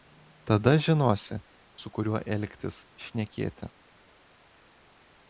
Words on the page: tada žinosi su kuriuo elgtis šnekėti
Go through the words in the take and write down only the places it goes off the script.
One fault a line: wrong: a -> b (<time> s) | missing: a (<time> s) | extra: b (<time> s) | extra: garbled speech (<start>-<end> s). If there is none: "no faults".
no faults